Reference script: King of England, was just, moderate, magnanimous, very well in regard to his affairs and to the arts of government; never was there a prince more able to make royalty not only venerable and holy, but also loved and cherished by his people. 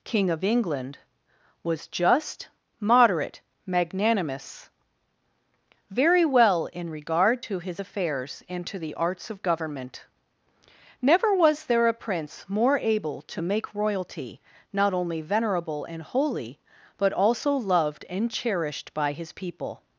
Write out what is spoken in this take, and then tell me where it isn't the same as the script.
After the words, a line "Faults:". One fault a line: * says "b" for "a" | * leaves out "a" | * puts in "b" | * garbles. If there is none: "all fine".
King of England, was just, moderate, magnanimous, very well in regard to his affairs and to the arts of government; never was there a prince more able to make royalty not only venerable and holy, but also loved and cherished by his people.
Faults:
all fine